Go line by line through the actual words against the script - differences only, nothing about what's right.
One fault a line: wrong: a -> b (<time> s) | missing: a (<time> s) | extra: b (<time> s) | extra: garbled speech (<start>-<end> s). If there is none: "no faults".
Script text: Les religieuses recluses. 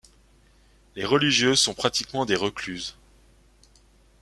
extra: sont pratiquement des (1.6 s)